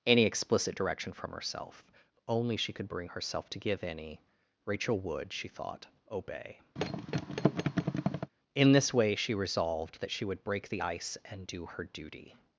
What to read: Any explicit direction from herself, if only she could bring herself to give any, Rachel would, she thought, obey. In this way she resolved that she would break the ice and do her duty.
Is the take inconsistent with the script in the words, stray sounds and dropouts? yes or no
yes